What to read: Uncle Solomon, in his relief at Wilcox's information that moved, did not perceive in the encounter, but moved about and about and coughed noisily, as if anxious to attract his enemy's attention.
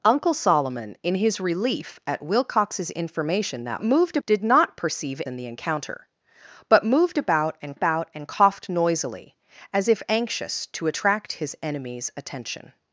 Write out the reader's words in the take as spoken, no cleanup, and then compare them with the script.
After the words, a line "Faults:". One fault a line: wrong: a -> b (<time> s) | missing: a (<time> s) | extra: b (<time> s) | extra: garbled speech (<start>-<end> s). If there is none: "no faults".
Uncle Solomon, in his relief at Wilcox's information that moved, did not perceive in the encounter, but moved about and about and coughed noisily, as if anxious to attract his enemy's attention.
Faults:
no faults